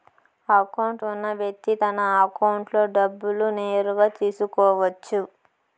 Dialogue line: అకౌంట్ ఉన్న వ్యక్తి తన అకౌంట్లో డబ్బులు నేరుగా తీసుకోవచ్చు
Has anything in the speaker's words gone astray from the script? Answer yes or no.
no